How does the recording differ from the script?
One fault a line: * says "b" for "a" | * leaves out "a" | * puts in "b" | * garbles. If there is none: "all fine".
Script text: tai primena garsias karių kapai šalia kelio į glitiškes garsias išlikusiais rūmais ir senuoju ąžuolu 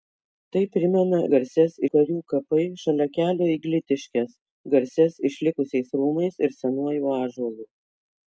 all fine